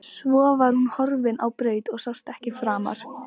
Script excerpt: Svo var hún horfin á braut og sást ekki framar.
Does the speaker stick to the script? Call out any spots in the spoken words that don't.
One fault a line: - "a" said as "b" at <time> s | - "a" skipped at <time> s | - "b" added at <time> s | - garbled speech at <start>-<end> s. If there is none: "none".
none